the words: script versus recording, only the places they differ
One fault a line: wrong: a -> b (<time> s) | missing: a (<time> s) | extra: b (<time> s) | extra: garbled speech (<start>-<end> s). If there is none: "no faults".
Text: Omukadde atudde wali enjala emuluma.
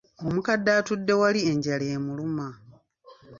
no faults